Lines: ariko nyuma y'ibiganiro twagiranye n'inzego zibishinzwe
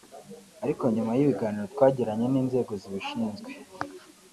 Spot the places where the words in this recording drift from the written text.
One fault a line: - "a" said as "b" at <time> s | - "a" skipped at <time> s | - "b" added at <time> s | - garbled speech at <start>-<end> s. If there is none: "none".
none